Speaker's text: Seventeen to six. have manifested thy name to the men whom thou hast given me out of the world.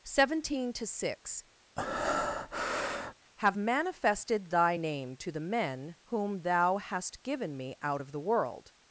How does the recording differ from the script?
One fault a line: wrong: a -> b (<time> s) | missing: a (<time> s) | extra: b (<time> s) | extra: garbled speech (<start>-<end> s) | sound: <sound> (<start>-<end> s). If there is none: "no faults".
sound: breath (1.8-3.1 s)